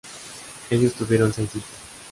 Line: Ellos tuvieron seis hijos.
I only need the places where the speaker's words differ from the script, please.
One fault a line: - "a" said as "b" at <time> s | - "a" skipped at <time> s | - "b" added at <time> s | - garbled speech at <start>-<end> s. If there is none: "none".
none